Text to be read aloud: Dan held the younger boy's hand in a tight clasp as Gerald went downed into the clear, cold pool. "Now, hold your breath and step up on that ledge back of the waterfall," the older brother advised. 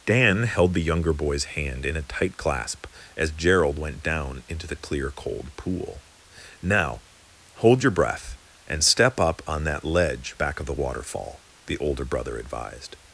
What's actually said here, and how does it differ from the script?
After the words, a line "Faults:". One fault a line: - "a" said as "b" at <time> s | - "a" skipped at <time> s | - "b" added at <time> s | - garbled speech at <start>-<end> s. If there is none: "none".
Dan held the younger boy's hand in a tight clasp as Gerald went down into the clear, cold pool. "Now, hold your breath and step up on that ledge back of the waterfall," the older brother advised.
Faults:
- "downed" said as "down" at 4.0 s